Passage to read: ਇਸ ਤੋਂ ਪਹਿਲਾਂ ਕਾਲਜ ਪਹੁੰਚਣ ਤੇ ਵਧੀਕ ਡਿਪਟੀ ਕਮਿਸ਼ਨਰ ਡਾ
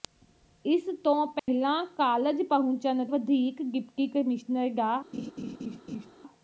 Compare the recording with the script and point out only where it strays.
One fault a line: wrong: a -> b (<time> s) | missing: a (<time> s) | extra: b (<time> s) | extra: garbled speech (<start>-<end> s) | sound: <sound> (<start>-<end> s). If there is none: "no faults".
sound: dropout (1.4-1.5 s)
missing: ਤੇ (3.0 s)
sound: laugh (5.1-6.1 s)